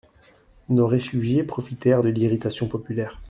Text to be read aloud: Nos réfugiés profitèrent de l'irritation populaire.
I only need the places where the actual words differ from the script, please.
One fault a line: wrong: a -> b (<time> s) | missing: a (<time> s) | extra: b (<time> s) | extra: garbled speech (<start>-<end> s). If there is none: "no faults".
no faults